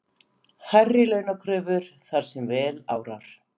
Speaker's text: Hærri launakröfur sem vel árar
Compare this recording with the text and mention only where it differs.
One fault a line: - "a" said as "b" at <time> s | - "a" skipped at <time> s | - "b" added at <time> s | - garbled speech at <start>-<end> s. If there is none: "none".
- "þar" added at 2.1 s